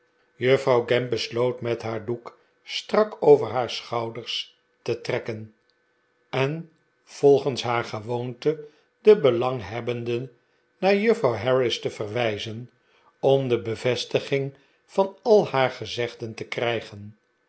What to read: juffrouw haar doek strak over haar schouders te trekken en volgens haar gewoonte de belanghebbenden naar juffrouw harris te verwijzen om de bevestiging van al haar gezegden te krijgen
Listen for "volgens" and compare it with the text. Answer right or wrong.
right